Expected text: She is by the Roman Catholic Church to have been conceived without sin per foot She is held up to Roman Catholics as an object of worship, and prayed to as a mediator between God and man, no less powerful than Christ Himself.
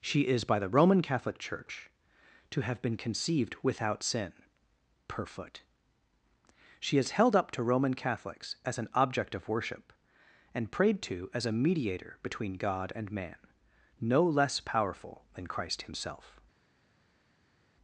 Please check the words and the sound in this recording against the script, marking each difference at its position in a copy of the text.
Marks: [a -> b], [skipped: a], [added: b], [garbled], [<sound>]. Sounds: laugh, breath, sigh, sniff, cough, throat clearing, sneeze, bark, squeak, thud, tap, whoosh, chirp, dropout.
She is by the Roman Catholic Church to have been conceived without sin per foot She is held up to Roman Catholics as an object of worship, and prayed to as a mediator between God and man, no less powerful than Christ Himself.